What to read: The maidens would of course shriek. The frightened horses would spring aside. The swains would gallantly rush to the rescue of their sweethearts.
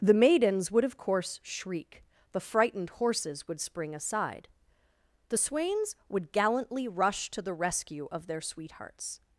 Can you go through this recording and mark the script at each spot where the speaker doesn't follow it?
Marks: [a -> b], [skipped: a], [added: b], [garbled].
The maidens would of course shriek. The frightened horses would spring aside. The swains would gallantly rush to the rescue of their sweethearts.